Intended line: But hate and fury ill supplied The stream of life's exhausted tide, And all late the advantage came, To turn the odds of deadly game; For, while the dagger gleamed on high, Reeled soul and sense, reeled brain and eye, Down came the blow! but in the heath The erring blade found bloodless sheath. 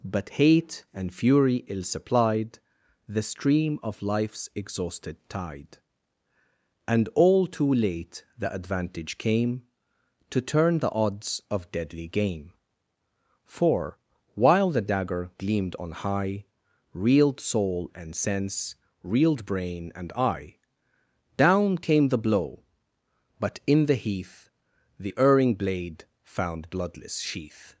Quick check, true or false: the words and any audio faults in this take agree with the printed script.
false